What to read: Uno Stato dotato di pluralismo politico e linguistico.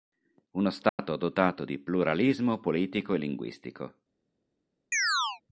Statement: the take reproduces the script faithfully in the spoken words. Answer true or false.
true